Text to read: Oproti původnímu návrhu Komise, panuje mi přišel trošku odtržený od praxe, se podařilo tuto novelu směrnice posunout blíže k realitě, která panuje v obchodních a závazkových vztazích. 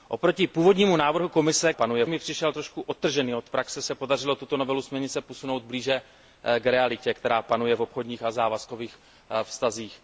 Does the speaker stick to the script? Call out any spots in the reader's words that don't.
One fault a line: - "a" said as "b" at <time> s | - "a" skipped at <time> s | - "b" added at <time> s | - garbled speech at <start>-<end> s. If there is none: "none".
none